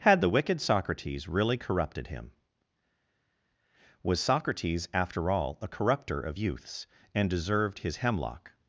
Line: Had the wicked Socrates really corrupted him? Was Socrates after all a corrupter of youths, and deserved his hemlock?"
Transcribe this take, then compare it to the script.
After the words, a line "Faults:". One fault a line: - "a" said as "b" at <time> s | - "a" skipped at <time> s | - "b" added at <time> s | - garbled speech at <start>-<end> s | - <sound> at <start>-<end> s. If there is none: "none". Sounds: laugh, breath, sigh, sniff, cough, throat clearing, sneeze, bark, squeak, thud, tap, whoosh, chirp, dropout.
Had the wicked Socrates really corrupted him? Was Socrates after all a corrupter of youths, and deserved his hemlock?"
Faults:
none